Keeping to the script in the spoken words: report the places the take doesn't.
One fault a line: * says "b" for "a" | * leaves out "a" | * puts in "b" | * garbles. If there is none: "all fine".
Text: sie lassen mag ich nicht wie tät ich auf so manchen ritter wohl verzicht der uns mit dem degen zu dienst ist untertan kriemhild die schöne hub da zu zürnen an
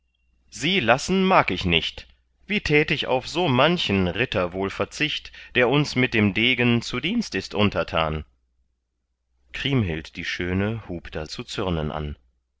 all fine